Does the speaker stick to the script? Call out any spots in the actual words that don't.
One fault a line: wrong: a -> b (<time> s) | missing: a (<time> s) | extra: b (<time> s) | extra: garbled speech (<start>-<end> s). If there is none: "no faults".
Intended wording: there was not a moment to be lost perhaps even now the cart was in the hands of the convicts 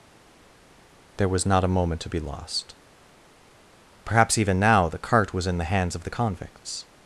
no faults